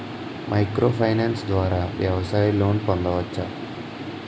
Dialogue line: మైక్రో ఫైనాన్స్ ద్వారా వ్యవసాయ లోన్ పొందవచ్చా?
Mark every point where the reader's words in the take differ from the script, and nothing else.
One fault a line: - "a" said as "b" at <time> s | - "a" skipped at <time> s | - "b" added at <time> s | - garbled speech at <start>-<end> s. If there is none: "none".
none